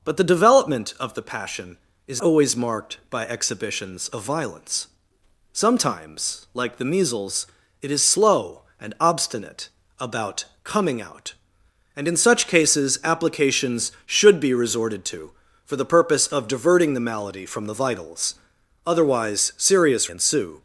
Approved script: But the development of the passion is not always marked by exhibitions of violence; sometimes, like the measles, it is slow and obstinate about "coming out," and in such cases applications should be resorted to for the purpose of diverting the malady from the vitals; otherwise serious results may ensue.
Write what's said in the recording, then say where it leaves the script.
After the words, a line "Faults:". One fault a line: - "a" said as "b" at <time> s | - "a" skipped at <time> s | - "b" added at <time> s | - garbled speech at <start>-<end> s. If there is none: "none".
But the development of the passion is always marked by exhibitions of violence; sometimes, like the measles, it is slow and obstinate about "coming out," and in such cases applications should be resorted to for the purpose of diverting the malady from the vitals; otherwise serious ensue.
Faults:
- "not" skipped at 2.2 s
- "results may" skipped at 20.1 s